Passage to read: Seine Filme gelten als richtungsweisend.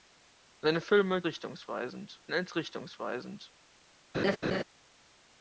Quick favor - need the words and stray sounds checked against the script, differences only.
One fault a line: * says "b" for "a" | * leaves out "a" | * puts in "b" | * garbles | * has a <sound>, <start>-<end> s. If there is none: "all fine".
* says "richtungsweisend" for "gelten"
* has a laugh, 4.1-4.6 s